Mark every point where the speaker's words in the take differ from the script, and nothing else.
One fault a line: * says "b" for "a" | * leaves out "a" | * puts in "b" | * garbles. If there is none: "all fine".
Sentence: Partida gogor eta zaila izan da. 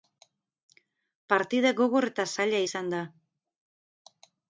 all fine